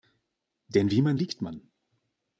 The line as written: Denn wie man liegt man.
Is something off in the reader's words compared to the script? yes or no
no